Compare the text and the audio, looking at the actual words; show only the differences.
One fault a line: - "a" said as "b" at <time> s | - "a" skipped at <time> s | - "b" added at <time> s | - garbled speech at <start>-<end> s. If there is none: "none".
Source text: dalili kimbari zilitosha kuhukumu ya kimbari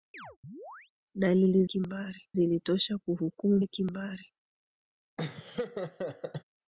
none